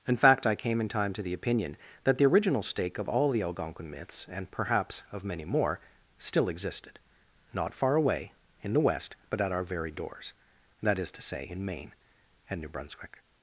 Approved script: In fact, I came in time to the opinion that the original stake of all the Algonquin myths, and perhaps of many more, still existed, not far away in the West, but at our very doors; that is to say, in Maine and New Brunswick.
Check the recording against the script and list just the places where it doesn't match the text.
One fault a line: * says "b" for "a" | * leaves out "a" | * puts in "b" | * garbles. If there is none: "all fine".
all fine